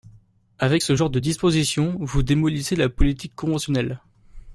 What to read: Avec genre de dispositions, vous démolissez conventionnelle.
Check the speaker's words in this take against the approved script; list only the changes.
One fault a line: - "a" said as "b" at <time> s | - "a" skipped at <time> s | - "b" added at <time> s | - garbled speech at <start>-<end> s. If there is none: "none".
- "ce" added at 0.8 s
- "la politique" added at 2.8 s